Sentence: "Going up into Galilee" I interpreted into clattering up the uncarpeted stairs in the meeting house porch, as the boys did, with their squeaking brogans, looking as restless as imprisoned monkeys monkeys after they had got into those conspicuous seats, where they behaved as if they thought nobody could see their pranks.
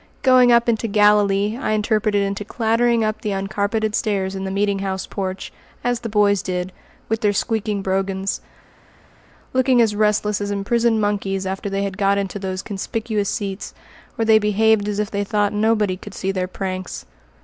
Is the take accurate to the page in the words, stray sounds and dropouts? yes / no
no